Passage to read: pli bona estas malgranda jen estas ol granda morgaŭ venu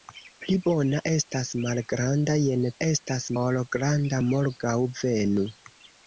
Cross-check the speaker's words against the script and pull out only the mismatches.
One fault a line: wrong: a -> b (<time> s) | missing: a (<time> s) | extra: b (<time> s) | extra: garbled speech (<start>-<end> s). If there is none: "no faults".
no faults